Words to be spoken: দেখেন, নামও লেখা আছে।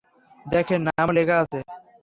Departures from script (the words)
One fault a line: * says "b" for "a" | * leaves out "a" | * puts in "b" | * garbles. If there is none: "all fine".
all fine